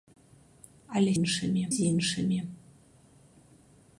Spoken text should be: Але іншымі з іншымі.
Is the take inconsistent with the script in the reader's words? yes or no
no